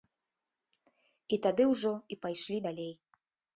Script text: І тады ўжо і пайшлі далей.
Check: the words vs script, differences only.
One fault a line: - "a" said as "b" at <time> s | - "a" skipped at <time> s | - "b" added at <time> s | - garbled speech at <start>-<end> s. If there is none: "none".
none